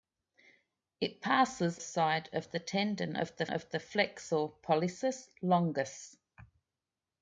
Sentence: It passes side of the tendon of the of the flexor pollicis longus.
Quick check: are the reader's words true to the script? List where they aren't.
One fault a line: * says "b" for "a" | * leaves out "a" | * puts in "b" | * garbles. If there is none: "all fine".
all fine